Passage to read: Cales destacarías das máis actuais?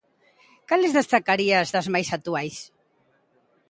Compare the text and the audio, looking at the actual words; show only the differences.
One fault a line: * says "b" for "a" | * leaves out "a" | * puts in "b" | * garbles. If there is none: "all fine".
all fine